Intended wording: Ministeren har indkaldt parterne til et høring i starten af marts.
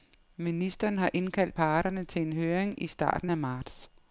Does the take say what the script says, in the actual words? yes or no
no